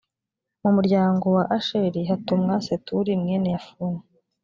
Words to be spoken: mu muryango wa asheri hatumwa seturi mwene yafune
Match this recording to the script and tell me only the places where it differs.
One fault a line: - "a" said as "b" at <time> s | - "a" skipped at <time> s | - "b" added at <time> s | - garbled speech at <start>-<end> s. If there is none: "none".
none